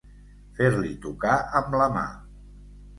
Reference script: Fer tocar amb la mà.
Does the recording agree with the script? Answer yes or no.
no